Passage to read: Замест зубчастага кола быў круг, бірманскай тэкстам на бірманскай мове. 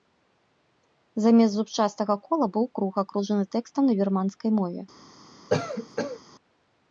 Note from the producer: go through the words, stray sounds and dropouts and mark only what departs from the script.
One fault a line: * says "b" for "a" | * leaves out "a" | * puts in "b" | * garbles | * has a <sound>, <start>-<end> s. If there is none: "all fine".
* says "акружаны" for "бірманскай"
* has a cough, 5.5-6.2 s